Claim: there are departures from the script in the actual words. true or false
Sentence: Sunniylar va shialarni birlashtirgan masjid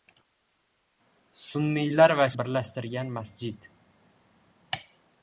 true